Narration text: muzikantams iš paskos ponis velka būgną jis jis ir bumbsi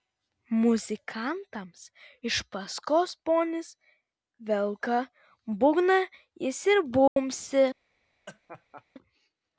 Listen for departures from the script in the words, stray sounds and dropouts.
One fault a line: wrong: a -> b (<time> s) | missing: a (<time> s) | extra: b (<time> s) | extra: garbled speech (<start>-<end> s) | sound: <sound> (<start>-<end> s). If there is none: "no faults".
missing: jis (6.6 s)
sound: dropout (7.1-7.2 s)
sound: laugh (8.3-8.8 s)